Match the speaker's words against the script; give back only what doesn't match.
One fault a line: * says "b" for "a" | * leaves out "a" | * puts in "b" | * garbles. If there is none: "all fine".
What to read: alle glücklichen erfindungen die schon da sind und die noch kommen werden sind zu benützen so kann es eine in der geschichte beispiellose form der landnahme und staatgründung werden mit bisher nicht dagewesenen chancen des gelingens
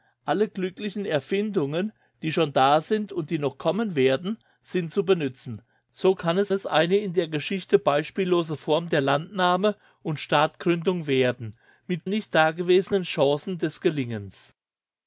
* puts in "es"
* leaves out "bisher"